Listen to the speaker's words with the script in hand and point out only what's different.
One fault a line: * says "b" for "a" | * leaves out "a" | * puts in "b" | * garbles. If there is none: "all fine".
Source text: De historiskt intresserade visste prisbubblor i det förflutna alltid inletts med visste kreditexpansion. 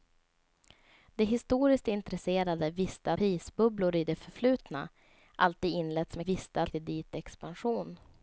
all fine